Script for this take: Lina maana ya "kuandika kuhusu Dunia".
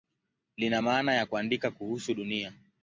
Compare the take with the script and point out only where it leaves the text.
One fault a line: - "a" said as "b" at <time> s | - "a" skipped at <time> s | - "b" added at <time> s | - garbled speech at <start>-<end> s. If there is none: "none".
none